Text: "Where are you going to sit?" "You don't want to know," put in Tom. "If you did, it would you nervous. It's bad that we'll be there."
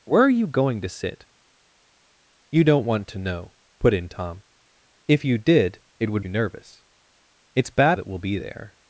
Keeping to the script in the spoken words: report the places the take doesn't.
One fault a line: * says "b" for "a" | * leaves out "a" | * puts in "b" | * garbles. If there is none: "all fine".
all fine